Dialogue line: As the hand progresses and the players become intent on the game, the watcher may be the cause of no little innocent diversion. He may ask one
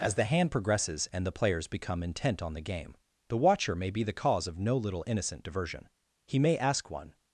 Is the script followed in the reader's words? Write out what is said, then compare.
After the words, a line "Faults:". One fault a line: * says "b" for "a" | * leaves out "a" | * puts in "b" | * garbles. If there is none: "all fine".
As the hand progresses and the players become intent on the game, the watcher may be the cause of no little innocent diversion. He may ask one
Faults:
all fine